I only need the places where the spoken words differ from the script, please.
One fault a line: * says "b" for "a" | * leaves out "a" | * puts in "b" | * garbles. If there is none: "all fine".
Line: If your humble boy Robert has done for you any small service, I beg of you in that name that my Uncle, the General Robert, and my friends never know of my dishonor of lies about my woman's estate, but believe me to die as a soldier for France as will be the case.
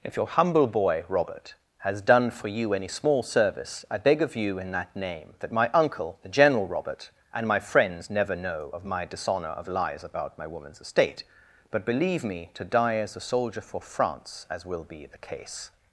all fine